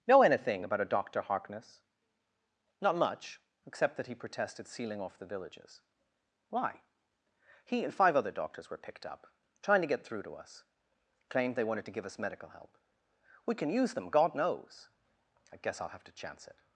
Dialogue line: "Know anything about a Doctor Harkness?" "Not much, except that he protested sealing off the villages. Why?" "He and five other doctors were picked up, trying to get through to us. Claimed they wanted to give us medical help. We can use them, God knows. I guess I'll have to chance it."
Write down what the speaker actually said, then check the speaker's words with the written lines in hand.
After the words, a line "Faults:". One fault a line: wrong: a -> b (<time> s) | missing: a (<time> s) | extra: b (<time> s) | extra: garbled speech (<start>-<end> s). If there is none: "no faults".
"Know anything about a Doctor Harkness?" "Not much, except that he protested sealing off the villages. Why?" "He and five other doctors were picked up, trying to get through to us. Claimed they wanted to give us medical help. We can use them, God knows. I guess I'll have to chance it."
Faults:
no faults